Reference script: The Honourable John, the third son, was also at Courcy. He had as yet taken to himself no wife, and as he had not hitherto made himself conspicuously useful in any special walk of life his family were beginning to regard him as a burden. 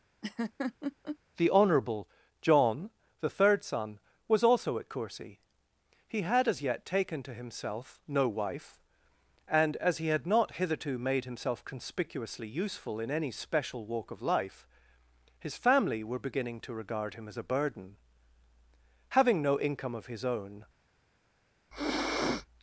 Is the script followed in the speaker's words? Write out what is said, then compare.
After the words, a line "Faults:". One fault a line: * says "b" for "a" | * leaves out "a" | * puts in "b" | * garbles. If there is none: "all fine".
The Honourable John, the third son, was also at Courcy. He had as yet taken to himself no wife, and as he had not hitherto made himself conspicuously useful in any special walk of life his family were beginning to regard him as a burden. Having no income of his own
Faults:
* puts in "Having no income of his own"